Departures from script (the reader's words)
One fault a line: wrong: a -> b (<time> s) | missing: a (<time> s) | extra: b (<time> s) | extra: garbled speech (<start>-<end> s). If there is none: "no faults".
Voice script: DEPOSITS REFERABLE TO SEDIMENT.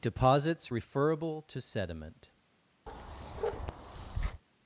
no faults